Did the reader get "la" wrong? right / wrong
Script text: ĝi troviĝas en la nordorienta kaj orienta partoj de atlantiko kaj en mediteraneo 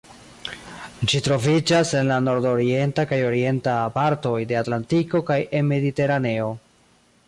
right